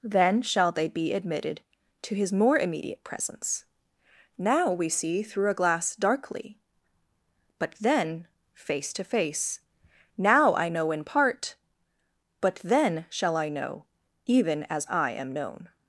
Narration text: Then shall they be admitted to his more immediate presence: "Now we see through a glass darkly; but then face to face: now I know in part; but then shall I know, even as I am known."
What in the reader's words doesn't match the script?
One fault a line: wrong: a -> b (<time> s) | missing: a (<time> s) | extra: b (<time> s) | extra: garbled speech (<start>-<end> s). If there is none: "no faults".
no faults